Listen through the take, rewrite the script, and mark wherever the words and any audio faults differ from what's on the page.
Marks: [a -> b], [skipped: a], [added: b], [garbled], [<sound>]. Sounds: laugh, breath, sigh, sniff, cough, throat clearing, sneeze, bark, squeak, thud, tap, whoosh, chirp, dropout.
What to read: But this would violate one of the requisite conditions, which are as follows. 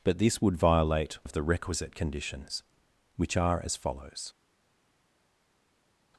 But this would violate [skipped: one] of the requisite conditions, which are as follows.